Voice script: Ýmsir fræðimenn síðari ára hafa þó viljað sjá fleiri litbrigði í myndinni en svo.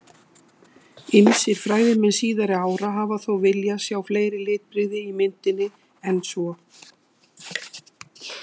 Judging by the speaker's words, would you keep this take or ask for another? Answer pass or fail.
pass